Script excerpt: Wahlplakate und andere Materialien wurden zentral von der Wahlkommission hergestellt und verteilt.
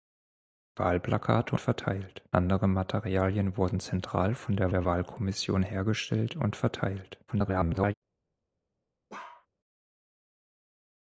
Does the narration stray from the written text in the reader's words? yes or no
yes